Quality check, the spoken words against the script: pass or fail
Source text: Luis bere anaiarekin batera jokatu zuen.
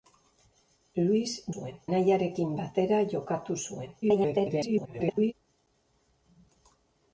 fail